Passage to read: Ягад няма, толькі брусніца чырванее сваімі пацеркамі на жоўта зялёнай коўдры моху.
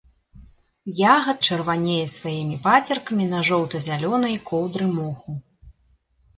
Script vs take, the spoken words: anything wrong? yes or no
yes